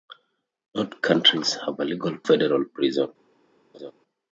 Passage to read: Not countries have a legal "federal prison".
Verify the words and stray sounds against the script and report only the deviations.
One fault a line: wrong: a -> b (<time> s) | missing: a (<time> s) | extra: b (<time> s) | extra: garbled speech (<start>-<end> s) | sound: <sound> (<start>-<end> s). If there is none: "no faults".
sound: laugh (3.7-3.9 s)